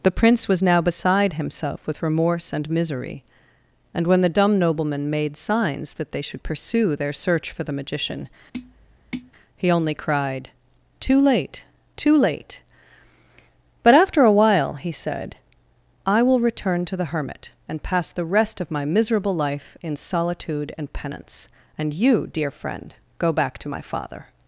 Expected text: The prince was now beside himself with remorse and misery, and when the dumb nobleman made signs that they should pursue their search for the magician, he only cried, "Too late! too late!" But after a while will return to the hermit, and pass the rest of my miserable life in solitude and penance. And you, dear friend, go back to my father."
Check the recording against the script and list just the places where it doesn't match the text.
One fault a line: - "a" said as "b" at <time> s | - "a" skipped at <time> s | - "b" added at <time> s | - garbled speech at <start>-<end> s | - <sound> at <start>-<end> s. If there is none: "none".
- tap at 8.5-9.3 s
- "he said I" added at 14.7 s